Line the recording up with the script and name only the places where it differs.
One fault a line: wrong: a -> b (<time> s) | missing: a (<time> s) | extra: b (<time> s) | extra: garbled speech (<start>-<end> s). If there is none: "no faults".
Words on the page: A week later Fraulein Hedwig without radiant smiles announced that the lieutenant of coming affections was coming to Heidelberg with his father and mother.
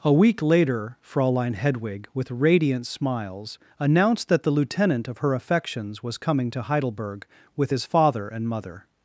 wrong: without -> with (2.1 s)
wrong: coming -> her (5.2 s)